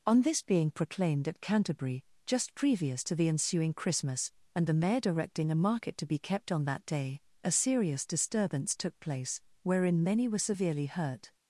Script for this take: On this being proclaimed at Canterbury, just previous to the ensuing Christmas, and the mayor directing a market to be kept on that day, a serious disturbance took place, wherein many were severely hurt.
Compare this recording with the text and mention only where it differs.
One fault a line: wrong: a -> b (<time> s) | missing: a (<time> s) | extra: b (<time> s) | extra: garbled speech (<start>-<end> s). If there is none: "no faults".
no faults